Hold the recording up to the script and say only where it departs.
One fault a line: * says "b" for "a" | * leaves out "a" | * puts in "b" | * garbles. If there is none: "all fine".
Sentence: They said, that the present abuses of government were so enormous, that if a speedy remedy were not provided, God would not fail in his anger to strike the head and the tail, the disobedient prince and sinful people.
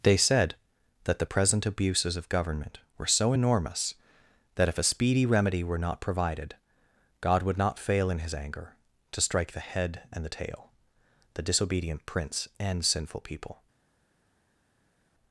all fine